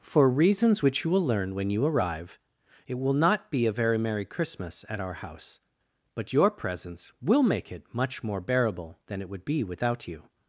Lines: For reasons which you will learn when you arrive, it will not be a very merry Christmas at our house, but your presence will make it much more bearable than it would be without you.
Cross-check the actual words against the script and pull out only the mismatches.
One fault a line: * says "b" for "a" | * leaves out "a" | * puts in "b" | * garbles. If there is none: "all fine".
all fine